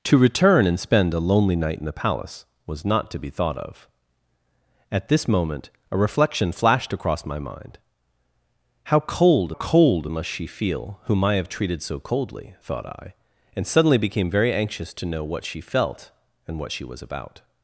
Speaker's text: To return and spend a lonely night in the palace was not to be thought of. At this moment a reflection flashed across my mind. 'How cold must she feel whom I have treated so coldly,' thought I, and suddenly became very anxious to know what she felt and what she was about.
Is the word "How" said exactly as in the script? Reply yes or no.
yes